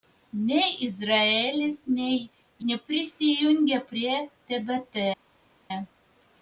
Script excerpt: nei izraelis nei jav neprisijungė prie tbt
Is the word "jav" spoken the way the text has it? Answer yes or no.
no